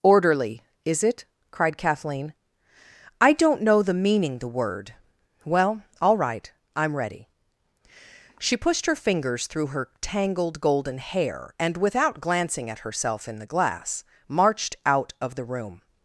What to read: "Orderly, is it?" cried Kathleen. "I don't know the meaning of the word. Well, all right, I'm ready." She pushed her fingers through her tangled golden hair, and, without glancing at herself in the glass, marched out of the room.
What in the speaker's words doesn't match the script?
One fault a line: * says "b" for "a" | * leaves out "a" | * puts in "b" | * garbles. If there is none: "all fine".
* leaves out "of"